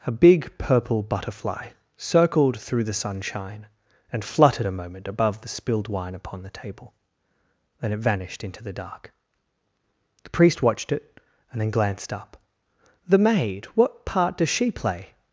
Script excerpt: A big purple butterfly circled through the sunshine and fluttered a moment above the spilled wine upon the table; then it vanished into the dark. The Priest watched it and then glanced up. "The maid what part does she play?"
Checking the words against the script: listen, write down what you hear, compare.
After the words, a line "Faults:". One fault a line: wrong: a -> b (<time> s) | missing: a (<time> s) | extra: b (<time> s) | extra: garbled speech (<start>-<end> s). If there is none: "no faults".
A big purple butterfly circled through the sunshine and fluttered a moment above the spilled wine upon the table; then it vanished into the dark. The Priest watched it and then glanced up. "The maid what part does she play?"
Faults:
no faults